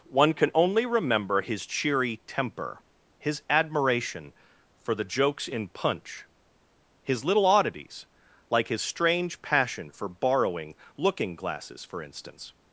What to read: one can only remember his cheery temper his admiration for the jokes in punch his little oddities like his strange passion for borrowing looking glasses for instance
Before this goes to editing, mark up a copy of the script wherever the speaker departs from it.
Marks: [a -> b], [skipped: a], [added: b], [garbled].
one can only remember his cheery temper his admiration for the jokes in punch his little oddities like his strange passion for borrowing looking glasses for instance